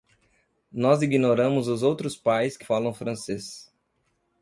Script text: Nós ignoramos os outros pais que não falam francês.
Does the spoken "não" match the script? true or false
false